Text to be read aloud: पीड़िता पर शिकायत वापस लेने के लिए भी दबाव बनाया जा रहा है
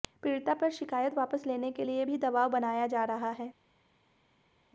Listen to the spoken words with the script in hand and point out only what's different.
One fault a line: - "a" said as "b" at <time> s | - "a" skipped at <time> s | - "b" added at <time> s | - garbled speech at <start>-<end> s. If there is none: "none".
none